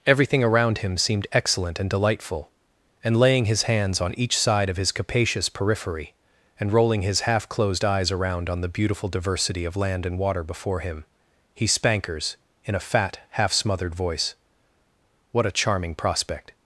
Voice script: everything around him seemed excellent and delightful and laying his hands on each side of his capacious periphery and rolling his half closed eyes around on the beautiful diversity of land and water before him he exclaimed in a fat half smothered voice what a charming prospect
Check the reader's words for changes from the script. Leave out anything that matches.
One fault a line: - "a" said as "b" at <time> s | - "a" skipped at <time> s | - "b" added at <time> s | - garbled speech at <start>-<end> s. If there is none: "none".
- "exclaimed" said as "spankers" at 11.7 s